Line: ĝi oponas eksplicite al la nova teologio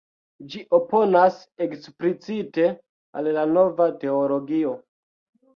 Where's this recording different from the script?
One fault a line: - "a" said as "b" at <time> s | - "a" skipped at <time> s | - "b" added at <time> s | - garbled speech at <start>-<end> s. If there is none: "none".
none